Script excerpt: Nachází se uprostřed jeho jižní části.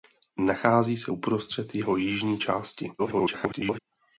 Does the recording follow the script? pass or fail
fail